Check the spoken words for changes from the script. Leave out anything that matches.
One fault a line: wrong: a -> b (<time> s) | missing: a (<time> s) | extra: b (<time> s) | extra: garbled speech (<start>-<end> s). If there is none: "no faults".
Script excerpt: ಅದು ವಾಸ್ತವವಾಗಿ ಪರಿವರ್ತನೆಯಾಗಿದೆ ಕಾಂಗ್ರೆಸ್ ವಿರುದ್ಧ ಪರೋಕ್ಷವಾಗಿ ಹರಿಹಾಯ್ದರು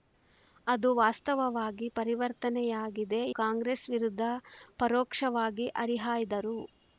no faults